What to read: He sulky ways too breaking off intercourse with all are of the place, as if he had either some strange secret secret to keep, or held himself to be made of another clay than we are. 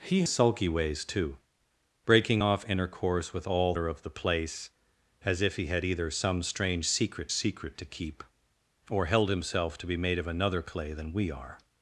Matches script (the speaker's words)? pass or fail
pass